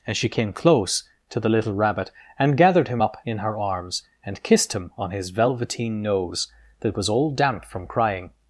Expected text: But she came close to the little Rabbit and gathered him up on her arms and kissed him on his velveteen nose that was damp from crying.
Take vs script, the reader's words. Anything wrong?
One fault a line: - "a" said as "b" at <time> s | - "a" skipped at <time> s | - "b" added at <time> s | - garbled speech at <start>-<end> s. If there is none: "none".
- "But" said as "And" at 0.1 s
- "on" said as "in" at 3.2 s
- "all" added at 7.1 s